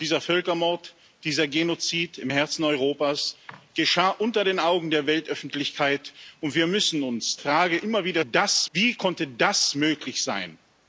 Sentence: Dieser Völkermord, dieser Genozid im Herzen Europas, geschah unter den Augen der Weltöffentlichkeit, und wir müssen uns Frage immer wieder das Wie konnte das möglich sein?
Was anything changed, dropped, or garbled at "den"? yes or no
no